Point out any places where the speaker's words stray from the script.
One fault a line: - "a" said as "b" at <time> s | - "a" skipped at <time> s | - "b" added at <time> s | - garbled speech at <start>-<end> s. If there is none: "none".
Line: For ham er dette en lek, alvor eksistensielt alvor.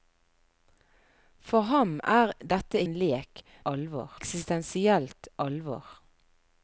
none